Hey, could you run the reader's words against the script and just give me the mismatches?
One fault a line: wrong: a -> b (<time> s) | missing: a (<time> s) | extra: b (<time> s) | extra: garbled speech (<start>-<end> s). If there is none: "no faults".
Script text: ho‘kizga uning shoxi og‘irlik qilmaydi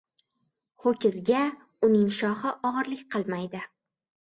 no faults